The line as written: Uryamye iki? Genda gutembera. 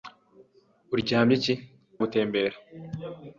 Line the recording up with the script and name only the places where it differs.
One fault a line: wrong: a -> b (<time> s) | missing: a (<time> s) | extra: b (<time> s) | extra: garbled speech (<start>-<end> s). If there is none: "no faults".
missing: Genda (1.5 s)